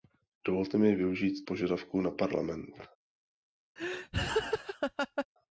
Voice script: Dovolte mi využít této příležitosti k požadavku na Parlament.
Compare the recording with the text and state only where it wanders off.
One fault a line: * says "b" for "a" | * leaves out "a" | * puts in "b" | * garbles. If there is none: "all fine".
* leaves out "této příležitosti k"